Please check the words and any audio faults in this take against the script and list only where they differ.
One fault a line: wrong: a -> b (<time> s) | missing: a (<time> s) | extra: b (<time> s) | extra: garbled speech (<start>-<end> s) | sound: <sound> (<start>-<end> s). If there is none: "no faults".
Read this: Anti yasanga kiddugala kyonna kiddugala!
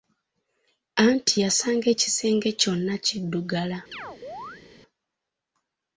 wrong: kiddugala -> ekisenge (1.9 s)
sound: chirp (3.9-4.6 s)